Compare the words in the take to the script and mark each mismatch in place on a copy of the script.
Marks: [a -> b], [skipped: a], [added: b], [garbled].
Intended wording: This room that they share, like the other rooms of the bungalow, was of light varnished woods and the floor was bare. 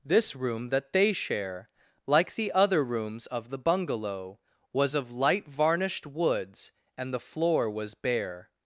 This room that they share, like the other rooms of the bungalow, was of light varnished woods and the floor was bare.